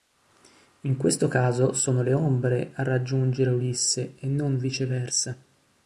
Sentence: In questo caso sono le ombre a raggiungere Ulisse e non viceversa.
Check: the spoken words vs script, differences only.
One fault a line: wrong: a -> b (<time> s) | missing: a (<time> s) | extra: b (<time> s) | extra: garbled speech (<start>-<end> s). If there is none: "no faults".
no faults